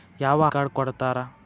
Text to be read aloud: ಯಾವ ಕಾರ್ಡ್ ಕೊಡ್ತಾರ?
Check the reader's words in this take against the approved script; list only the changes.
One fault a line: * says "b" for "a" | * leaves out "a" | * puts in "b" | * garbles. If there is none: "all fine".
all fine